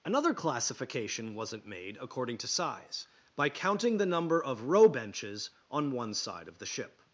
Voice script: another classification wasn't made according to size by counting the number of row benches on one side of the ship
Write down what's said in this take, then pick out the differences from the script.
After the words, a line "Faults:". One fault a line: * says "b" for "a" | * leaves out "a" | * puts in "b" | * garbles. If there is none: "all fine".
another classification wasn't made according to size by counting the number of row benches on one side of the ship
Faults:
all fine